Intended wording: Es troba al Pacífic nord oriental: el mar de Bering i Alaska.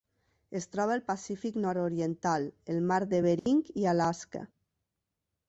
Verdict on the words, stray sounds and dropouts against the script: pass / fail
fail